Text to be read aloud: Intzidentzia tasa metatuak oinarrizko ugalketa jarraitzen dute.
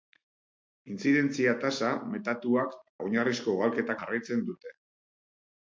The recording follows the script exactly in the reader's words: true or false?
true